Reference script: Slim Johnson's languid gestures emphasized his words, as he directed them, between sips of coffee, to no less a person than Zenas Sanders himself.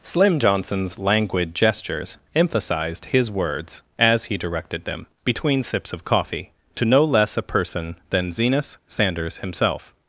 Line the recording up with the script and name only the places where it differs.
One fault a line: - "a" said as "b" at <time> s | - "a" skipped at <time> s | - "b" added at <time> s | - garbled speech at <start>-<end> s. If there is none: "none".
none